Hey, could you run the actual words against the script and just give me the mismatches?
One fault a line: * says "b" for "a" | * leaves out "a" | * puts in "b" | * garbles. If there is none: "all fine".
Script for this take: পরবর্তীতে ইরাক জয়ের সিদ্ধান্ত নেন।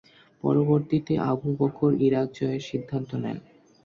* puts in "আবু বকর"